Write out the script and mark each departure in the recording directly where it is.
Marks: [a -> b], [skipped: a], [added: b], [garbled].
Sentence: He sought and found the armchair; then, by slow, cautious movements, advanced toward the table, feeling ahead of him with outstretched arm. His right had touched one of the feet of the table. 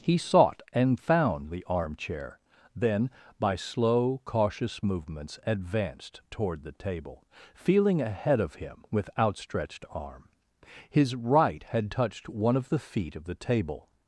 He sought and found the armchair; then, by slow, cautious movements, advanced toward the table, feeling ahead of him with outstretched arm. His right had touched one of the feet of the table.